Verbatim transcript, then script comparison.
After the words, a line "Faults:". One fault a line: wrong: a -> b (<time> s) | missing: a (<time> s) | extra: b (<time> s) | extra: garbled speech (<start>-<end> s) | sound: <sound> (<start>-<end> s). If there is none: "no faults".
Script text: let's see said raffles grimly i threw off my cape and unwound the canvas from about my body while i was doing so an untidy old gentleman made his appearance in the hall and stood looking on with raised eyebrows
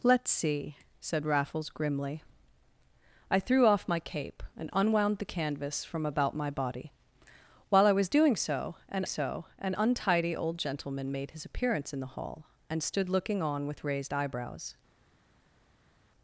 let's see said raffles grimly i threw off my cape and unwound the canvas from about my body while i was doing so an so an untidy old gentleman made his appearance in the hall and stood looking on with raised eyebrows
Faults:
extra: so an (9.0 s)